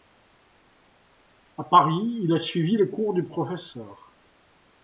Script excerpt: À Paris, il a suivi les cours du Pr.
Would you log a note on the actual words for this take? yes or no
no